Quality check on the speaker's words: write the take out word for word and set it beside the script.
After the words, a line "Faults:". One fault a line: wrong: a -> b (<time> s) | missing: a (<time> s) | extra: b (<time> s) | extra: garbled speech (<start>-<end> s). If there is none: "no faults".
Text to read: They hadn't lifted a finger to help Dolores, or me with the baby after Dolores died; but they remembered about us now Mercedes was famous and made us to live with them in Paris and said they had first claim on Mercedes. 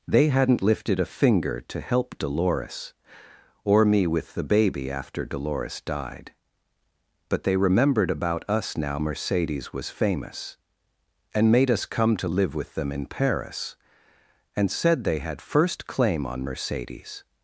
They hadn't lifted a finger to help Dolores, or me with the baby after Dolores died; but they remembered about us now Mercedes was famous and made us come to live with them in Paris and said they had first claim on Mercedes.
Faults:
extra: come (11.8 s)